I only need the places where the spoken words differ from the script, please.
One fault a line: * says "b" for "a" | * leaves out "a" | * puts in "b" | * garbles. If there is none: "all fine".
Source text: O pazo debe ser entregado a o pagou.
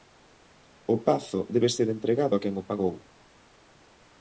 * puts in "quen"